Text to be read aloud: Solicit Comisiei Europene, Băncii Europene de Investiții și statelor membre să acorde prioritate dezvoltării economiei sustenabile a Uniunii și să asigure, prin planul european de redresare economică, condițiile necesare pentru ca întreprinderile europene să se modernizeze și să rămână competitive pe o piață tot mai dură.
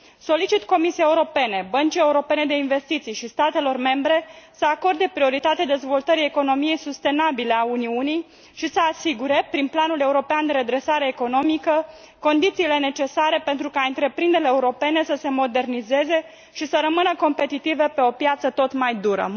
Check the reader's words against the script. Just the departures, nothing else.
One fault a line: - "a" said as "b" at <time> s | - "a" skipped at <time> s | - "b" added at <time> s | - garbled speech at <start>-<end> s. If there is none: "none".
none